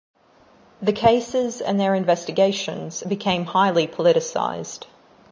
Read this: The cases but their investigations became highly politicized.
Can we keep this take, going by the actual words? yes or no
no